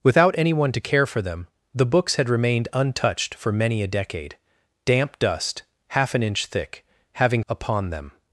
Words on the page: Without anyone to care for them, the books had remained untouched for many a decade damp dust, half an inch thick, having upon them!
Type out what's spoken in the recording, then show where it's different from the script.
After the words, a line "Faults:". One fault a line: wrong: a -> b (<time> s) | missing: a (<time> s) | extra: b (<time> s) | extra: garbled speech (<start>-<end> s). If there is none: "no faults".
Without anyone to care for them, the books had remained untouched for many a decade damp dust, half an inch thick, having upon them!
Faults:
no faults